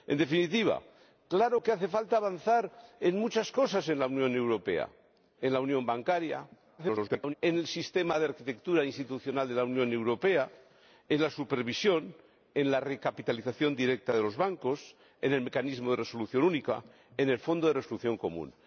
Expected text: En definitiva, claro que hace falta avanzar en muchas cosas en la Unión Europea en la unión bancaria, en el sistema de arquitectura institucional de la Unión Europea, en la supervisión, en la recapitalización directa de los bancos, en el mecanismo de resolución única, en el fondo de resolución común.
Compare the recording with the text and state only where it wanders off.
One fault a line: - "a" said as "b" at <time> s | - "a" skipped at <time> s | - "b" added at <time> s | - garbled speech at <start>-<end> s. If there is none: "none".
- garbled speech at 6.8-7.3 s